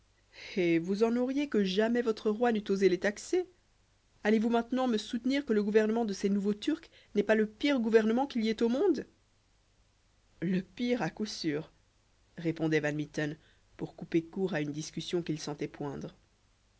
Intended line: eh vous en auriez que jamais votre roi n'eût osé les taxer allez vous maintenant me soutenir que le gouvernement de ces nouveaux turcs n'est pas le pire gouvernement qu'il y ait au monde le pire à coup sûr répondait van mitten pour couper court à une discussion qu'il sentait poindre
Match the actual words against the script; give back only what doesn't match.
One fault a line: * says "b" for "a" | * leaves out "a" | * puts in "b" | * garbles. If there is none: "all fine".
all fine